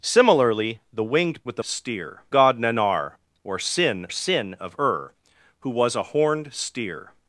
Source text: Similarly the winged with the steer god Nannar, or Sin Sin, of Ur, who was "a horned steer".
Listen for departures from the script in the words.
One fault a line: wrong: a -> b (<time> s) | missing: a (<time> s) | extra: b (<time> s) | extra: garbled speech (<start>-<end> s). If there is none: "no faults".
no faults